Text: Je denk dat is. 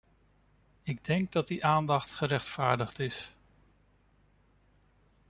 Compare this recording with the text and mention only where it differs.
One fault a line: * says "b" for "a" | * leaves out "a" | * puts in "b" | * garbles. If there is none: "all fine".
* says "Ik" for "Je"
* puts in "die aandacht gerechtvaardigd"